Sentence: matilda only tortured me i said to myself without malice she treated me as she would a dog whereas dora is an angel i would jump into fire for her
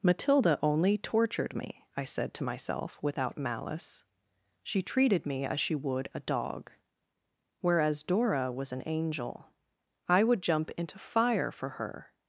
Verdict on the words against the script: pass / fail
fail